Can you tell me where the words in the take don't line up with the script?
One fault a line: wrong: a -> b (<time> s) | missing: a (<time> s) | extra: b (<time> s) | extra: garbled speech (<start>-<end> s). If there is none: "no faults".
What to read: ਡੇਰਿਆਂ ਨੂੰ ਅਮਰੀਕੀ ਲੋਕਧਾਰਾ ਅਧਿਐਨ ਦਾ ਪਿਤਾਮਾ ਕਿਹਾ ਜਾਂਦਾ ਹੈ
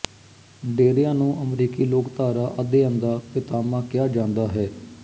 no faults